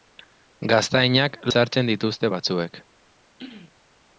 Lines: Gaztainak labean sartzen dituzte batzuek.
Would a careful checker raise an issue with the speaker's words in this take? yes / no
yes